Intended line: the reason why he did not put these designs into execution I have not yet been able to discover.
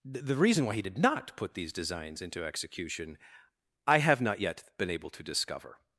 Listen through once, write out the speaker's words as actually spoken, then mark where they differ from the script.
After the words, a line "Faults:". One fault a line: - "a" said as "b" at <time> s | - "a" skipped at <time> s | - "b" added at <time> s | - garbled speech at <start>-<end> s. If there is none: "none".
the reason why he did not put these designs into execution I have not yet been able to discover.
Faults:
none